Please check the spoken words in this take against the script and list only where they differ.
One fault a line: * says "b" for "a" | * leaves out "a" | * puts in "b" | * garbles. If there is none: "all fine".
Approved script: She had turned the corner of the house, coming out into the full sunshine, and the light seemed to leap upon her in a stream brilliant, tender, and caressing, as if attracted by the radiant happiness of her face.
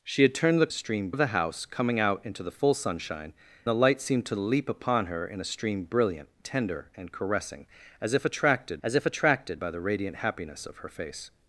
* says "stream" for "corner"
* leaves out "and"
* puts in "as if attracted"